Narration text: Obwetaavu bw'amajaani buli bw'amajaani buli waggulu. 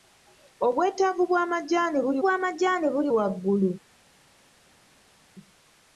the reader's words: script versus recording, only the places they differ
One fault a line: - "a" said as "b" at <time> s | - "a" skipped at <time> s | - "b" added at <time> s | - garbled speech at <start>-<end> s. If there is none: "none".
none